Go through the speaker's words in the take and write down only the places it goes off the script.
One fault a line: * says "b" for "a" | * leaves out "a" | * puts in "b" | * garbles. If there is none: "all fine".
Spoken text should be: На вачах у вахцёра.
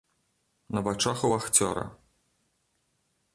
all fine